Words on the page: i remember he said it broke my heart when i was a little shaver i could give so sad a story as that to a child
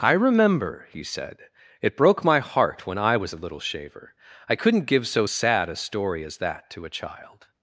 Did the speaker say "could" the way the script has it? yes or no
no